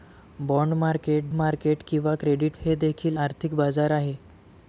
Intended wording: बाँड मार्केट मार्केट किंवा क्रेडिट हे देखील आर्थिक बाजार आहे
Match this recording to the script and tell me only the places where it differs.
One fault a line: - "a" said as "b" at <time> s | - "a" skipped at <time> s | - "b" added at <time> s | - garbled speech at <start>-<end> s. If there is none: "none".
none